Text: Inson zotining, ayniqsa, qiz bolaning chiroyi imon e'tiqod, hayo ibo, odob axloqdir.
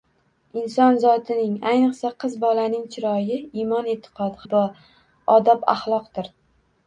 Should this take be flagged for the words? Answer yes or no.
yes